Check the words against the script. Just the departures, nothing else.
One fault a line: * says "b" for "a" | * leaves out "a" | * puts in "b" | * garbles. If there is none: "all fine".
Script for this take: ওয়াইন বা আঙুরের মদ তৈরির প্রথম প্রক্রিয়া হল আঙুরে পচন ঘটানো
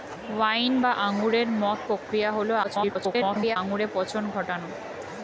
* leaves out "তৈরির প্রথম"
* garbles